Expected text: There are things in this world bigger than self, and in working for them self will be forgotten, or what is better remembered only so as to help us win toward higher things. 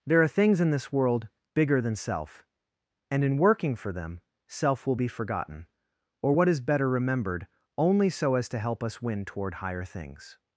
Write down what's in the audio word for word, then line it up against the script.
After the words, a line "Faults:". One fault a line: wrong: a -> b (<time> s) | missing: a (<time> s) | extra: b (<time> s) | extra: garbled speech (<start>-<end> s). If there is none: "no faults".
There are things in this world bigger than self, and in working for them self will be forgotten, or what is better remembered only so as to help us win toward higher things.
Faults:
no faults